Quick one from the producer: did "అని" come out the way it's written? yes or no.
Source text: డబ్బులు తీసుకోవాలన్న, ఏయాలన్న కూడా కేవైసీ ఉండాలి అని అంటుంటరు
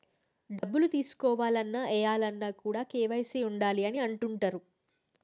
yes